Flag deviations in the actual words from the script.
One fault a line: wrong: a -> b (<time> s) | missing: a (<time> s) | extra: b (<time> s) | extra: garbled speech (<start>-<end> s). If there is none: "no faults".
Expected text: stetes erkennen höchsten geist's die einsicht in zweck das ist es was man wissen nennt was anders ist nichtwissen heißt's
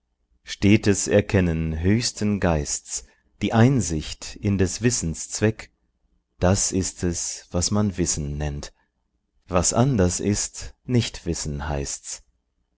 extra: des wissens (4.6 s)